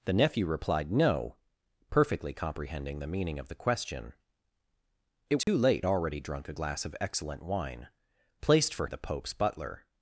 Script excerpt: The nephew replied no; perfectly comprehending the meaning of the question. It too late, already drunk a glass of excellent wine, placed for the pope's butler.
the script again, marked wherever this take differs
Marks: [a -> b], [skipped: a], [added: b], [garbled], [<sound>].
The nephew replied no; perfectly comprehending the meaning of the question. It too [dropout] late, already drunk a glass of excellent wine, placed for the pope's butler.